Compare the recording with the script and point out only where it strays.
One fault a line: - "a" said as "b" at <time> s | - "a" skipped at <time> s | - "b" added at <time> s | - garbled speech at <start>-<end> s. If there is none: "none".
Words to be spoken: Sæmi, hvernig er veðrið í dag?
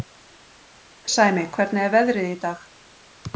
none